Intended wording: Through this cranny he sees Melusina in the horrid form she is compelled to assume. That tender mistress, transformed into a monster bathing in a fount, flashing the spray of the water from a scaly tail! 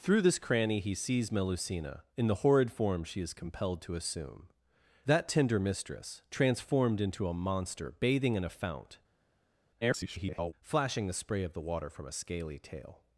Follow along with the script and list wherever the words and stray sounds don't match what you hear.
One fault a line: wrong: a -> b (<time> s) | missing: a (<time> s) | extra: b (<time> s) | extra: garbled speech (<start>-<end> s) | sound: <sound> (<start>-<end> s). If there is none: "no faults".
extra: garbled speech (9.8-10.5 s)